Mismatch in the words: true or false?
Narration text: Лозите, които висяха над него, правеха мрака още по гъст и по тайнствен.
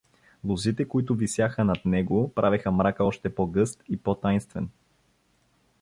false